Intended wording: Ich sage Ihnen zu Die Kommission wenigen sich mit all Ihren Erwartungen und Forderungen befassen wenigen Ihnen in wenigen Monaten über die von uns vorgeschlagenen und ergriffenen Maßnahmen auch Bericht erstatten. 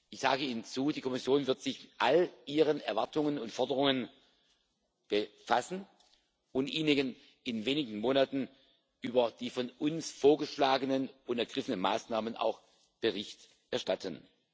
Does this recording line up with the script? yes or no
no